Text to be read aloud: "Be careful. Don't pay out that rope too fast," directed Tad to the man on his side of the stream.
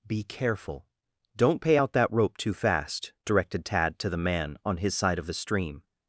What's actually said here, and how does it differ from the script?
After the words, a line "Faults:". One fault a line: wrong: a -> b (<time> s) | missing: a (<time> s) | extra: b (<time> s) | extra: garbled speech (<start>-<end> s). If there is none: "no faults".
"Be careful. Don't pay out that rope too fast," directed Tad to the man on his side of the stream.
Faults:
no faults